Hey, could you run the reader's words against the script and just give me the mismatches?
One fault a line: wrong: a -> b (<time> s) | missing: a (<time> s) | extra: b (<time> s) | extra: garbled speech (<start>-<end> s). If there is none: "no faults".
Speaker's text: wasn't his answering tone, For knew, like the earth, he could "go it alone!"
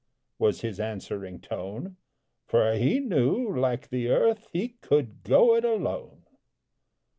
wrong: wasn't -> was (0.4 s)
extra: he (2.7 s)